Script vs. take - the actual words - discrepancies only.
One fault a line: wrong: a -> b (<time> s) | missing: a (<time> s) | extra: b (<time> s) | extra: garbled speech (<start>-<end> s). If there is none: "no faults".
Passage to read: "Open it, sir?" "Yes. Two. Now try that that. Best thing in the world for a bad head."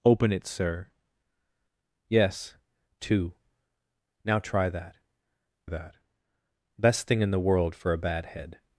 no faults